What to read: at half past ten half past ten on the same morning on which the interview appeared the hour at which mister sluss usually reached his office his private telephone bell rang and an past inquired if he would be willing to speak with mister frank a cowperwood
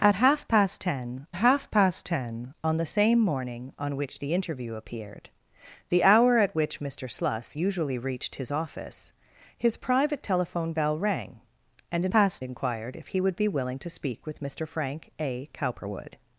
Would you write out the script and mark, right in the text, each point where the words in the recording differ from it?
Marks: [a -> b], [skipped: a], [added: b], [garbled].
at half past ten half past ten on the same morning on which the interview appeared the hour at which mister sluss usually reached his office his private telephone bell rang and an past inquired if he would be willing to speak with mister frank a cowperwood